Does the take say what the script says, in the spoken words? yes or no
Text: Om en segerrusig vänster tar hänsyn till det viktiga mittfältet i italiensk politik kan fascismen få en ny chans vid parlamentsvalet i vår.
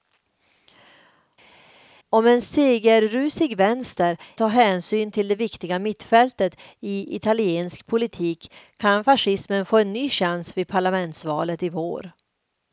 yes